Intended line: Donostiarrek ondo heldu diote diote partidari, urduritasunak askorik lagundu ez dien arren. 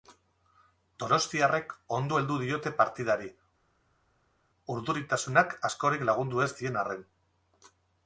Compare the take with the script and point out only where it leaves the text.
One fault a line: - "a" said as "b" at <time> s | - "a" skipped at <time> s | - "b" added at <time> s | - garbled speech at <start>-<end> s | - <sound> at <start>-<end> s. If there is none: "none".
- "diote" skipped at 2.7 s